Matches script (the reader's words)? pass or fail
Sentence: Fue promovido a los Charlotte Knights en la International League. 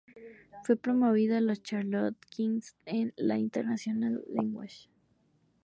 pass